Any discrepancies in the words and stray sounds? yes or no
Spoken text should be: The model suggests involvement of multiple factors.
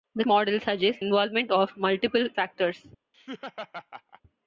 yes